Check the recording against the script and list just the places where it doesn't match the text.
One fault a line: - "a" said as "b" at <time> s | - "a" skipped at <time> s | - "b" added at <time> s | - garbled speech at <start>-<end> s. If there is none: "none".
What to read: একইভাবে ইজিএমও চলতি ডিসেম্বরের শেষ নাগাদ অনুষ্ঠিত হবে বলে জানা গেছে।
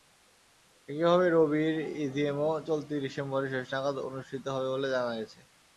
- "রবির" added at 1.3 s